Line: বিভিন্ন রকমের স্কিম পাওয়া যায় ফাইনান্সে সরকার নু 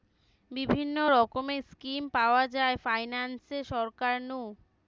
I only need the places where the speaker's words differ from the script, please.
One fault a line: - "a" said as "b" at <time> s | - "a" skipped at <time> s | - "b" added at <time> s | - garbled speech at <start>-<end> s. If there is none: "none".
none